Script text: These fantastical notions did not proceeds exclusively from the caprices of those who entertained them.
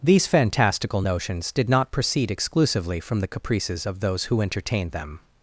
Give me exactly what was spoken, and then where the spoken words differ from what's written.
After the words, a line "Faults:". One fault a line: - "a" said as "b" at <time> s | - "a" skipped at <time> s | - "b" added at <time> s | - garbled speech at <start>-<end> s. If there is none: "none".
These fantastical notions did not proceed exclusively from the caprices of those who entertained them.
Faults:
- "proceeds" said as "proceed" at 1.9 s